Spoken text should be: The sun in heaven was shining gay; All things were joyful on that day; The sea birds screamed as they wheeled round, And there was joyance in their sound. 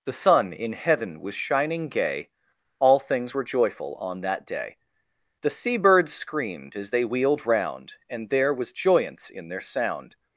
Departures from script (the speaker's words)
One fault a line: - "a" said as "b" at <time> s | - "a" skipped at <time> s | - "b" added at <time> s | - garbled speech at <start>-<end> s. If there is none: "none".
none